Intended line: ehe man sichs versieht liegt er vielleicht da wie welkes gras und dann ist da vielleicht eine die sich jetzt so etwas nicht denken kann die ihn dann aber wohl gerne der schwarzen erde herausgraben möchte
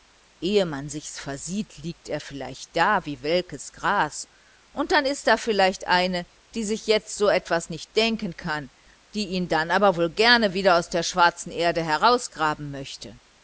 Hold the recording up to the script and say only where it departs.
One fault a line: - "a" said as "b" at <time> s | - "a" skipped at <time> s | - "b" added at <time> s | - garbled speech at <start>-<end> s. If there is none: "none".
- "wieder aus" added at 10.6 s